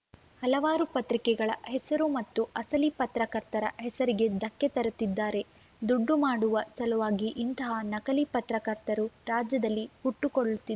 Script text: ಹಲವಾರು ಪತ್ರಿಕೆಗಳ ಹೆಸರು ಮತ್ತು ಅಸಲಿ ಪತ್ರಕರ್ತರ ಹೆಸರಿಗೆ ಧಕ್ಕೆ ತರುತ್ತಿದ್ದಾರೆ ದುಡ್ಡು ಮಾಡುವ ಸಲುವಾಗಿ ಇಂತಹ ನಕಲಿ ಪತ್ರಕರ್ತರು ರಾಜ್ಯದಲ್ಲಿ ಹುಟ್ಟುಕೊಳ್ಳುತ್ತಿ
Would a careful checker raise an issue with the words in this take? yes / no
no